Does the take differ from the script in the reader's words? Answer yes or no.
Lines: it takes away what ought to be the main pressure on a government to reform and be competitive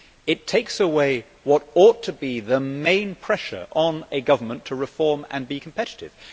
no